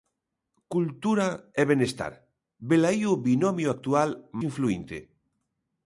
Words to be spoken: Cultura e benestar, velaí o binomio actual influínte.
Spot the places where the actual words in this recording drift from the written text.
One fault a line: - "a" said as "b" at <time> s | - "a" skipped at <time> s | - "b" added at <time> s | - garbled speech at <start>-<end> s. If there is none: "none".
none